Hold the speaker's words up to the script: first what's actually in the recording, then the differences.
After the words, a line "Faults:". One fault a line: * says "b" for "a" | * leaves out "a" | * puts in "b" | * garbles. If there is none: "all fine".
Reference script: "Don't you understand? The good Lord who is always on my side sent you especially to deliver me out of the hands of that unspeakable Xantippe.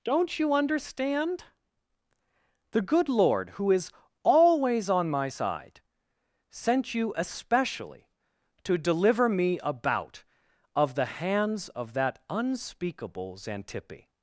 "Don't you understand? The good Lord who is always on my side sent you especially to deliver me about of the hands of that unspeakable Xantippe.
Faults:
* says "about" for "out"